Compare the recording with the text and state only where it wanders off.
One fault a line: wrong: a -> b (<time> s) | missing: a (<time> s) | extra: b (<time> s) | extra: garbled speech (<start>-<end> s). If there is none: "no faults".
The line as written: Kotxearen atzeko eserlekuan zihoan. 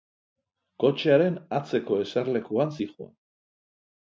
no faults